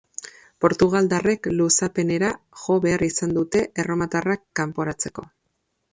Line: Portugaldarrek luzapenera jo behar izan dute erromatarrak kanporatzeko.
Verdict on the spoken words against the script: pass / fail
pass